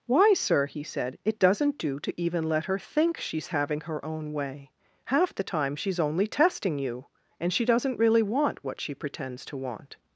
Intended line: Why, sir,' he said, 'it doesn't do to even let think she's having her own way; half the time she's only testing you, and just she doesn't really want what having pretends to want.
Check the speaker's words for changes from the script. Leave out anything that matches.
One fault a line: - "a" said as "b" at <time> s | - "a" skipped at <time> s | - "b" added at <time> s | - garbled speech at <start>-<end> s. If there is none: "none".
- "her" added at 2.6 s
- "just" skipped at 7.5 s
- "having" said as "she" at 8.8 s